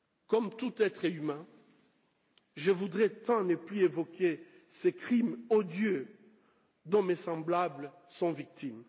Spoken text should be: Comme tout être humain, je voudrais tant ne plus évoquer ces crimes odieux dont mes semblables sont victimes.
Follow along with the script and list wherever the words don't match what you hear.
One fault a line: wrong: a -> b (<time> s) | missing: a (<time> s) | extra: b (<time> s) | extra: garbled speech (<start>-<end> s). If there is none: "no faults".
no faults